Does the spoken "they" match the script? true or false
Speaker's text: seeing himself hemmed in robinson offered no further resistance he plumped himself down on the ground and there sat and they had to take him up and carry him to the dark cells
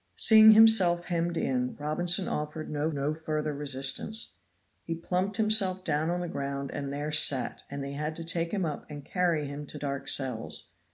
true